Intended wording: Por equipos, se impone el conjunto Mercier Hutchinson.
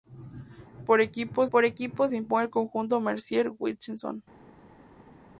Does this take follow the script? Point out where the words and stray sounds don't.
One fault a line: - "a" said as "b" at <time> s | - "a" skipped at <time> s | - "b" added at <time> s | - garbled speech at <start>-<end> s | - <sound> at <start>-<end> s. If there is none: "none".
- "por equipos" added at 1.5 s